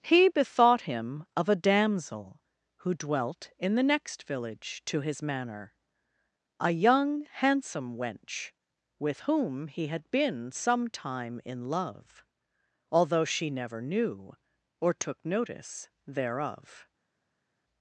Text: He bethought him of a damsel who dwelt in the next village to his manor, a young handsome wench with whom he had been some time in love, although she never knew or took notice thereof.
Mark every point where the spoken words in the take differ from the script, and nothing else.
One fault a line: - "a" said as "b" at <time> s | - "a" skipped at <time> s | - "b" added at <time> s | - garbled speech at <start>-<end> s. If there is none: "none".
none